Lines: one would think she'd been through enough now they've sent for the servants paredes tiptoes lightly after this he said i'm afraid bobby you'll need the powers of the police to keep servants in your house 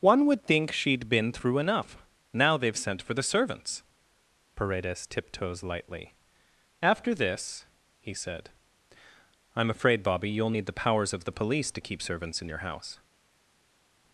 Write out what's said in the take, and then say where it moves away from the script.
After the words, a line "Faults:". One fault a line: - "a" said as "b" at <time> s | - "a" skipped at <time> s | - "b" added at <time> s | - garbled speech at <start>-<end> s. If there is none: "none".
one would think she'd been through enough now they've sent for the servants paredes tiptoes lightly after this he said i'm afraid bobby you'll need the powers of the police to keep servants in your house
Faults:
none